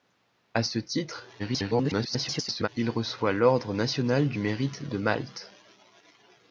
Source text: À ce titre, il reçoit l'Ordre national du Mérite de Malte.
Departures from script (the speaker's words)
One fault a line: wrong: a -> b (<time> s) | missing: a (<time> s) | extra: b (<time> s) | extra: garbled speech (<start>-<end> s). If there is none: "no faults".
extra: garbled speech (1.4-2.7 s)